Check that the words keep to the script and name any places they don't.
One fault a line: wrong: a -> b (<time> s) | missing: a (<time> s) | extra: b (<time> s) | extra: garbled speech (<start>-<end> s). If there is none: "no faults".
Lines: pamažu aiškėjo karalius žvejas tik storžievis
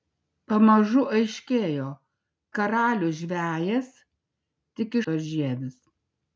no faults